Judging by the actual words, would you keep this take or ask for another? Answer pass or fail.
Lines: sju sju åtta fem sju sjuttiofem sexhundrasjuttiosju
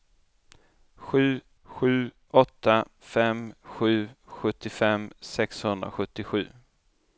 pass